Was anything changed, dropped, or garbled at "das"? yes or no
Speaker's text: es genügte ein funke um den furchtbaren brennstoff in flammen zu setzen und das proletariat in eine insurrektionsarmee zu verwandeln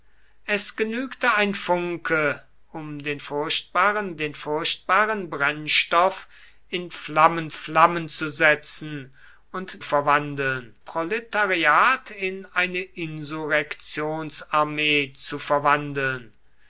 yes